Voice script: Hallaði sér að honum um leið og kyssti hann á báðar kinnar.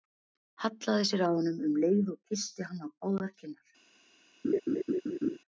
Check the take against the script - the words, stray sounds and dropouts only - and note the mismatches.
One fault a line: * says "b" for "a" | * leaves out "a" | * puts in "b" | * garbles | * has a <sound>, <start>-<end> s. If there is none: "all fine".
* has a laugh, 4.4-5.4 s